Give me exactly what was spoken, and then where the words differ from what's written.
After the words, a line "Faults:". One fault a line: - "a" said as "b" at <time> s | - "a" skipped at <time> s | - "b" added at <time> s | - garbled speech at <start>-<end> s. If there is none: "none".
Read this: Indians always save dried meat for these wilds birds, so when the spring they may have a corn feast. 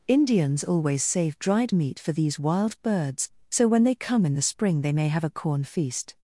Indians always save dried meat for these wild birds, so when they come in the spring they may have a corn feast.
Faults:
- "wilds" said as "wild" at 2.4 s
- "they come in" added at 3.8 s